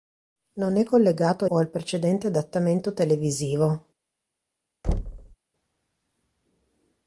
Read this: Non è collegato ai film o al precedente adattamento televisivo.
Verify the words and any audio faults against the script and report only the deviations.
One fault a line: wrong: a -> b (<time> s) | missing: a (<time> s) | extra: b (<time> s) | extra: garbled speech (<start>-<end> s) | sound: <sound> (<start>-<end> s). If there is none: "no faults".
missing: ai film (1.4 s)
sound: thud (4.8-5.4 s)